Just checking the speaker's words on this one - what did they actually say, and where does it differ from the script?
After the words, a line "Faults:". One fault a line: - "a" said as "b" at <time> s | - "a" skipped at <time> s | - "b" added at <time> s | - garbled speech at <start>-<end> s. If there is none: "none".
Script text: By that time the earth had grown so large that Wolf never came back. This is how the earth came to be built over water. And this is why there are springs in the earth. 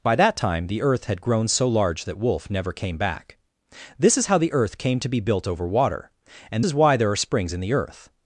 By that time the earth had grown so large that Wolf never came back. This is how the earth came to be built over water. And is why there are springs in the earth.
Faults:
- "this" skipped at 6.7 s